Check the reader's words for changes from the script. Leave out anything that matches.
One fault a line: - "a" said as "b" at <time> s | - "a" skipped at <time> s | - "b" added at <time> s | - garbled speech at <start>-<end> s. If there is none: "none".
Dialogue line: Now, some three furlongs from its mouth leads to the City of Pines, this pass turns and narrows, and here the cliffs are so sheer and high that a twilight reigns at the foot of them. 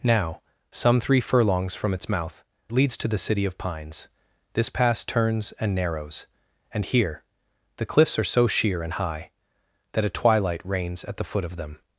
none